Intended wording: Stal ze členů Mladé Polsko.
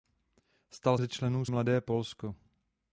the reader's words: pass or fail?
pass